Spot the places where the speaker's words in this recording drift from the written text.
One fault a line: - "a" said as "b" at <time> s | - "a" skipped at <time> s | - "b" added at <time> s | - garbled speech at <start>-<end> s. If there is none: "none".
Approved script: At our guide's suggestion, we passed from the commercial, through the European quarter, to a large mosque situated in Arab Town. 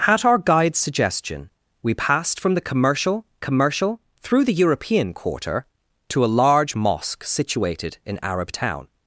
- "commercial" added at 3.4 s